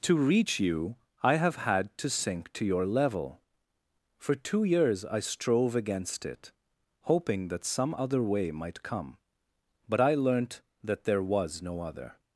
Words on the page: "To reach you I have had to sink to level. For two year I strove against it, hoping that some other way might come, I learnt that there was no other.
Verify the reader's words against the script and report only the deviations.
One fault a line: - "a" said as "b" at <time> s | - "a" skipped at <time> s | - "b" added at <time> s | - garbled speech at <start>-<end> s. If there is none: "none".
- "your" added at 2.6 s
- "year" said as "years" at 4.6 s
- "but" added at 9.9 s